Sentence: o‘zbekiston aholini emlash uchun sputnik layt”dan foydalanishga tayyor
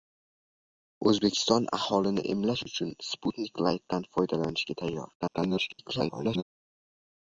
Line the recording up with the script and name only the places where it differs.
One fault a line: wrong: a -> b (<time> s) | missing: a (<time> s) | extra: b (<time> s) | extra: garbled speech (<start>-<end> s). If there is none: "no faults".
extra: garbled speech (5.2-6.4 s)